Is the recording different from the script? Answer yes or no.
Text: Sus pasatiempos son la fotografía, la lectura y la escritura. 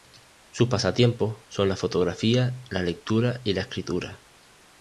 no